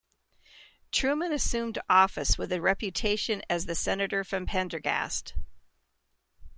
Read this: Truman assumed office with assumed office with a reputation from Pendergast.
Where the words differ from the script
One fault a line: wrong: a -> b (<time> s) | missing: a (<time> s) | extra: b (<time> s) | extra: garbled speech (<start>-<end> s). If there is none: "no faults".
wrong: assumed office with a reputation -> a reputation as the Senator (2.5 s)